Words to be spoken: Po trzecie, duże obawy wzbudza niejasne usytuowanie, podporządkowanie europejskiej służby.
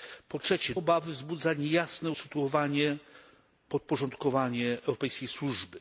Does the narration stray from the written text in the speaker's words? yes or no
yes